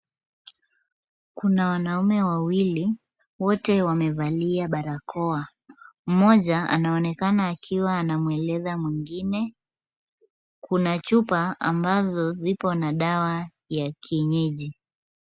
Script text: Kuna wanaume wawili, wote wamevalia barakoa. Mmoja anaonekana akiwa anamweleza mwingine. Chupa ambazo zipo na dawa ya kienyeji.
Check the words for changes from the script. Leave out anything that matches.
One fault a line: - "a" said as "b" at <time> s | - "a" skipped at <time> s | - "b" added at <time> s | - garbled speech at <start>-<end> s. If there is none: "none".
- "Kuna" added at 10.6 s